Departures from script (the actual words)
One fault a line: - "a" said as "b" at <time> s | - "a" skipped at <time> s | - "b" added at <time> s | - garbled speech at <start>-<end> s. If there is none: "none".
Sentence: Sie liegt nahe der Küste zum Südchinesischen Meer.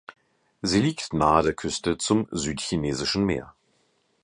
none